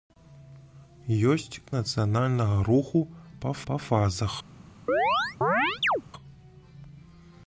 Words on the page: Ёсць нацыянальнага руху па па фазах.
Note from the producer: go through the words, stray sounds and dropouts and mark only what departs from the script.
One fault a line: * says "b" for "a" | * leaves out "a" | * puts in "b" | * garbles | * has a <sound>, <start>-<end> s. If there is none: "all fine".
* has a chirp, 4.9-6.0 s